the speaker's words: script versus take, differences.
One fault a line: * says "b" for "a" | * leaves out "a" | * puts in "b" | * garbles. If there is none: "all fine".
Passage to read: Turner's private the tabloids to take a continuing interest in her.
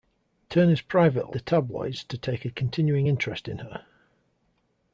all fine